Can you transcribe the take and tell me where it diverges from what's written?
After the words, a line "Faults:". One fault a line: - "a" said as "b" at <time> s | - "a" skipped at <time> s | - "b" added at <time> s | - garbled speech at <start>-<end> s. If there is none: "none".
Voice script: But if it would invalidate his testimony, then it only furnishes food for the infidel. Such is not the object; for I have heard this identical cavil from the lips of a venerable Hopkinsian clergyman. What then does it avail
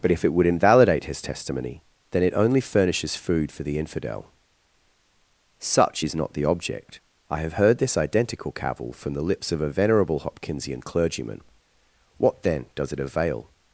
But if it would invalidate his testimony, then it only furnishes food for the infidel. Such is not the object; I have heard this identical cavil from the lips of a venerable Hopkinsian clergyman. What then does it avail
Faults:
- "for" skipped at 7.0 s